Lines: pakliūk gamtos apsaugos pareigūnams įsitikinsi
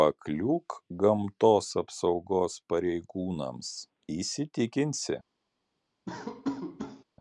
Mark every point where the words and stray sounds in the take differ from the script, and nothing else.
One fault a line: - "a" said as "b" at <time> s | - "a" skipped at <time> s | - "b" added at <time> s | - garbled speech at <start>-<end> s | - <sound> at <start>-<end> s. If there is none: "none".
- laugh at 6.1-7.0 s